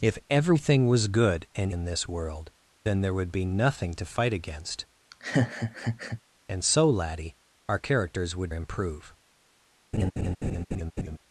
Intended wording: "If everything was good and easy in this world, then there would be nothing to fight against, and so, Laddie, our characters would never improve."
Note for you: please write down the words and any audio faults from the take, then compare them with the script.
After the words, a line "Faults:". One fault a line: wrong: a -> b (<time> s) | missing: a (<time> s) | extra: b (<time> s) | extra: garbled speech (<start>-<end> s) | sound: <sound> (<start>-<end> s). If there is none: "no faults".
"If everything was good and in this world, then there would be nothing to fight against, and so, Laddie, our characters would improve."
Faults:
missing: easy (1.7 s)
sound: laugh (5.1-6.2 s)
missing: never (8.5 s)
sound: laugh (9.9-11.2 s)